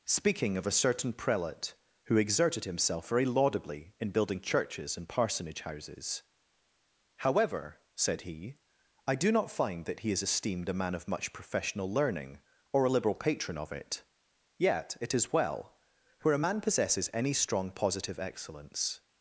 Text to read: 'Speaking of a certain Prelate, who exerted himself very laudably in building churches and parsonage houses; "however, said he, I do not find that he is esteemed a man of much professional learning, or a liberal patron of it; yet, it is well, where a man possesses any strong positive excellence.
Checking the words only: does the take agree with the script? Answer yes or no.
yes